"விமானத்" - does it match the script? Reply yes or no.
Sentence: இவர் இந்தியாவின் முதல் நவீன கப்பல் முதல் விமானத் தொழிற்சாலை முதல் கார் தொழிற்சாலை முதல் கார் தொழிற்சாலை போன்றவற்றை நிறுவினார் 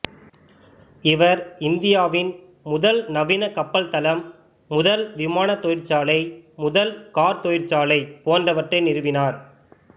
yes